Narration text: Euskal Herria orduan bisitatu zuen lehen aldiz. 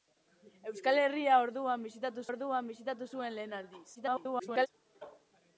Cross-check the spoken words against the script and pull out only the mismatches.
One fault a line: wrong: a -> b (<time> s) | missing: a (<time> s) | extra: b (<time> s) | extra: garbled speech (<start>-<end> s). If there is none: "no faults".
extra: orduan bisitatu (2.3 s)
extra: garbled speech (3.9-4.7 s)